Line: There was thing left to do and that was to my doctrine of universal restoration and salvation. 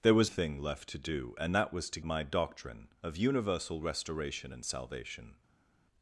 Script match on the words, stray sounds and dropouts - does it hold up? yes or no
yes